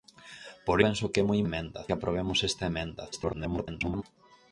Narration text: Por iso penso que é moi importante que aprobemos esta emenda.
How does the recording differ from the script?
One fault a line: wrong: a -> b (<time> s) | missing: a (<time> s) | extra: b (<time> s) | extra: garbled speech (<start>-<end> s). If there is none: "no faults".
missing: iso (0.8 s)
wrong: importante -> emenda (1.5 s)
extra: garbled speech (3.1-4.0 s)